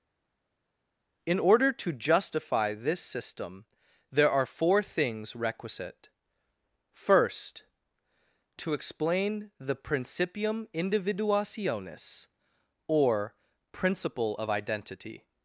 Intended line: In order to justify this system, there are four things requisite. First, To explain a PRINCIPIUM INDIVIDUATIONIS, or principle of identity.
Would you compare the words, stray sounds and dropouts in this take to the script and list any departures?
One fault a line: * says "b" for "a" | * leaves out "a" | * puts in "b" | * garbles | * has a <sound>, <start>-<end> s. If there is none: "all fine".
* says "the" for "a"